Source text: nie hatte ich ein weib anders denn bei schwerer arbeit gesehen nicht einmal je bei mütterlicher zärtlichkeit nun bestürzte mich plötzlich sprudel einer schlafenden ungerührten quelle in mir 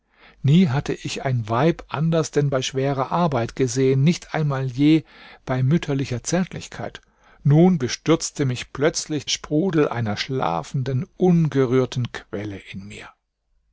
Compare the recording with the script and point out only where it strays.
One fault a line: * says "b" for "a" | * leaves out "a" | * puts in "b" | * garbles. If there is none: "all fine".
all fine